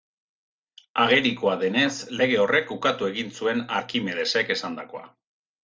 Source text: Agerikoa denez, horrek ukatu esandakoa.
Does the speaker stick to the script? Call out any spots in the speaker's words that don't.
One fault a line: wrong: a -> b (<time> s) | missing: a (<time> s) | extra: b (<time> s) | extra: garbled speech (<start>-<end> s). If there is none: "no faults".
extra: lege (2.2 s)
extra: egin zuen Arkimedesek (3.1 s)